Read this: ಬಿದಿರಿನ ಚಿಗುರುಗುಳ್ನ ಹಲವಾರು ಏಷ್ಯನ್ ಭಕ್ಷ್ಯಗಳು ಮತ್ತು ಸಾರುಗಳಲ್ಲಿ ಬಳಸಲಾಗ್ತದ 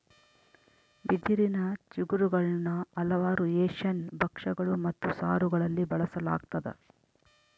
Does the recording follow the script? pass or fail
pass